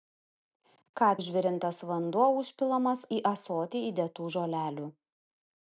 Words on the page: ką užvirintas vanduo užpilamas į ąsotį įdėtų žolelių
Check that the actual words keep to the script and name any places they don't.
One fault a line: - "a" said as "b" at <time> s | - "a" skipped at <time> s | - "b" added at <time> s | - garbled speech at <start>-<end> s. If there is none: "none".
none